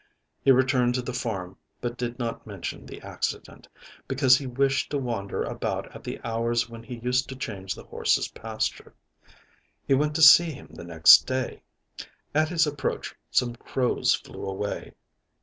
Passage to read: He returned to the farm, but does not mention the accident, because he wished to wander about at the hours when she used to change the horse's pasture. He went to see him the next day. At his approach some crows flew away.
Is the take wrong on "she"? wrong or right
wrong